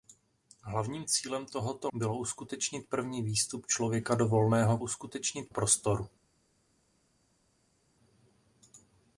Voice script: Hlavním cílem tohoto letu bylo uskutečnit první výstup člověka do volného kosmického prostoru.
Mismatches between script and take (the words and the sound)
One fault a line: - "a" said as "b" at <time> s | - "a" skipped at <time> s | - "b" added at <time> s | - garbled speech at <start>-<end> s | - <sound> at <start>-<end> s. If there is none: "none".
- "letu" skipped at 1.9 s
- "kosmického" said as "uskutečnit" at 4.8 s